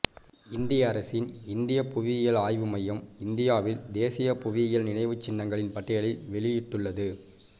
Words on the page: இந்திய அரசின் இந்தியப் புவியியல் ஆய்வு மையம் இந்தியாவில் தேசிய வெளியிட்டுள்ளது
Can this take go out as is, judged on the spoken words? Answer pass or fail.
fail